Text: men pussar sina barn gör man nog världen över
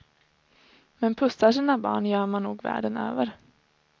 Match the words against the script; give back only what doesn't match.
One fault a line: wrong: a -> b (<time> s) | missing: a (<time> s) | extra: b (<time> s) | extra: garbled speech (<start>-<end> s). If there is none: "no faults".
no faults